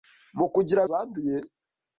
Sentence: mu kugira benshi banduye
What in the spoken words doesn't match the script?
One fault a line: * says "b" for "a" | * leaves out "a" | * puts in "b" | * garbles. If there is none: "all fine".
* leaves out "benshi"